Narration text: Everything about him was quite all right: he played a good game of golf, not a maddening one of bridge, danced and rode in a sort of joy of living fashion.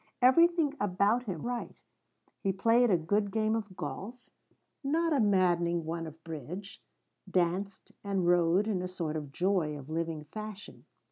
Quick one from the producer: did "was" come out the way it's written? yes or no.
no